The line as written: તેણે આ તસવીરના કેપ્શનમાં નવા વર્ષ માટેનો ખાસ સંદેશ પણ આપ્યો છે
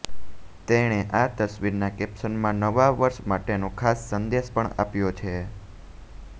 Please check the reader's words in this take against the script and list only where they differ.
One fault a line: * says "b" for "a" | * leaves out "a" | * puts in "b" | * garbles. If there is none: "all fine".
all fine